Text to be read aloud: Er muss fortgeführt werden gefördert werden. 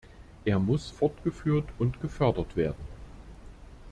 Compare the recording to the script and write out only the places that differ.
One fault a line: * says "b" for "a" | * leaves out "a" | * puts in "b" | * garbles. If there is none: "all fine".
* says "und" for "werden"